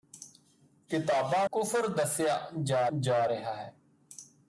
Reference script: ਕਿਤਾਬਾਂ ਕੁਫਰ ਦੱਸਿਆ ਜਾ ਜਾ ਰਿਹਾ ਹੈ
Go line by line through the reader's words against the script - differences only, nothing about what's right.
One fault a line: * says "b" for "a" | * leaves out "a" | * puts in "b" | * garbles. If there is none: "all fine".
all fine